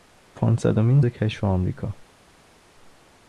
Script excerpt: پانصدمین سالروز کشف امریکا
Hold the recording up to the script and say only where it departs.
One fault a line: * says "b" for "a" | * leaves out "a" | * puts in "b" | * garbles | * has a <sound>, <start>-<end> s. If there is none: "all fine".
* leaves out "سالروز"